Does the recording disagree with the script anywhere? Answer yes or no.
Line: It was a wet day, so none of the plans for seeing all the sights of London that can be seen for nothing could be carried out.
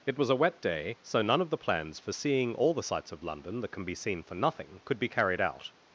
no